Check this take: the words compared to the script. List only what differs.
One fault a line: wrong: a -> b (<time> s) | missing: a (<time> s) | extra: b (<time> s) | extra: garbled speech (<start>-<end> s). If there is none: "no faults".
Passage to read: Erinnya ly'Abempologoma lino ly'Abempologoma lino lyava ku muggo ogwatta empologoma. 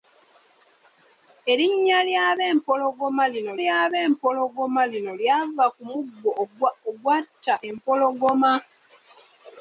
no faults